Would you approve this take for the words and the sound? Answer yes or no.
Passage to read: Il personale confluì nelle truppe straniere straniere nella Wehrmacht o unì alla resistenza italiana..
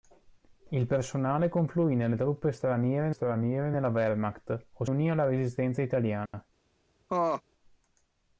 no